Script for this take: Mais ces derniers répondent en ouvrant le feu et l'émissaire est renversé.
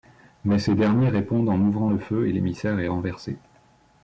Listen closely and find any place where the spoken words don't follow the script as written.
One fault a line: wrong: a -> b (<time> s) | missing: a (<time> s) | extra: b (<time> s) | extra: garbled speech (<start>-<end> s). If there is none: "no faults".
no faults